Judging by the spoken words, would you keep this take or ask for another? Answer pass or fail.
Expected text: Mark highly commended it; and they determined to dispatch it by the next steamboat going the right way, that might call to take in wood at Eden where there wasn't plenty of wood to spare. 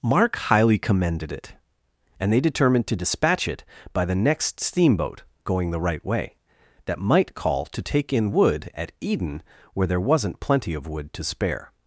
pass